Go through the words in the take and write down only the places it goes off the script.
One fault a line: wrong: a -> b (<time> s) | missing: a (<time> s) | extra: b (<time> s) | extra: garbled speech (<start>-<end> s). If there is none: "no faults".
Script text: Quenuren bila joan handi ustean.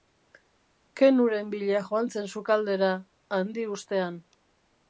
extra: zen sukaldera (2.1 s)